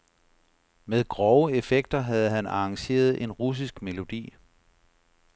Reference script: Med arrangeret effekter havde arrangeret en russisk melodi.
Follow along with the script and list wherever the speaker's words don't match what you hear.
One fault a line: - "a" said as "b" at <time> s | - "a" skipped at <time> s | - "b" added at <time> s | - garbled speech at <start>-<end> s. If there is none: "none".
- "arrangeret" said as "grove" at 1.1 s
- "han" added at 2.3 s